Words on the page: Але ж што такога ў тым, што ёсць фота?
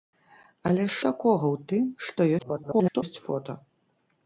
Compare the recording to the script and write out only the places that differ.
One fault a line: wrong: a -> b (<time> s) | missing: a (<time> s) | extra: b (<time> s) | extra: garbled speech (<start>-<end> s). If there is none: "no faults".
missing: што (0.9 s)
extra: garbled speech (2.4-3.0 s)